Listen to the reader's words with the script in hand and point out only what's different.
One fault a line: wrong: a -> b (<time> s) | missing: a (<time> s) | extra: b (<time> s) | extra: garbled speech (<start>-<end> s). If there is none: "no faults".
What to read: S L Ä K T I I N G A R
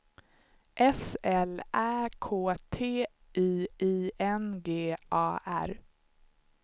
no faults